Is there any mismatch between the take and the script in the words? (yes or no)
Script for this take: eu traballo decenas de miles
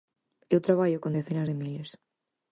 yes